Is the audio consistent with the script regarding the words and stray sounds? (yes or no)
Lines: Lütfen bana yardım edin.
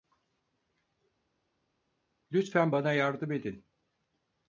yes